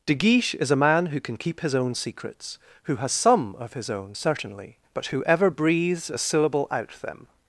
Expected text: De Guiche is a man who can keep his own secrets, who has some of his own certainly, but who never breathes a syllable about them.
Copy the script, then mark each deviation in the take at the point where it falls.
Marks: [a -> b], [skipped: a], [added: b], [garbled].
De Guiche is a man who can keep his own secrets, who has some of his own certainly, but who [never -> ever] breathes a syllable [about -> out] them.